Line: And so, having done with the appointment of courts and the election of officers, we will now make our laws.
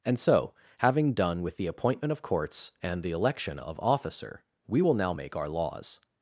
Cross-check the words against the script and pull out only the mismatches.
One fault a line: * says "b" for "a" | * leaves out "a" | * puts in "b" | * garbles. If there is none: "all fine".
* says "officer" for "officers"